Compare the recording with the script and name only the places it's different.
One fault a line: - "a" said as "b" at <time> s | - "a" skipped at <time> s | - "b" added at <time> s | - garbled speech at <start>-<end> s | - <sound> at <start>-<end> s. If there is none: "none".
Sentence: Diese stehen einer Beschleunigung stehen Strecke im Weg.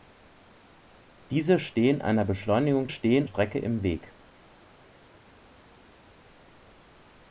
none